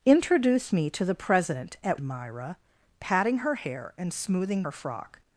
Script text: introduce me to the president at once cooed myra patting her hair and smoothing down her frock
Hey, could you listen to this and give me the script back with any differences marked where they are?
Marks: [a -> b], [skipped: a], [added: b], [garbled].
introduce me to the president at [skipped: once cooed] myra patting her hair and smoothing [skipped: down] her frock